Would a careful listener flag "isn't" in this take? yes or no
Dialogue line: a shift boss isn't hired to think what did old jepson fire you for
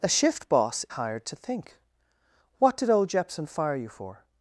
yes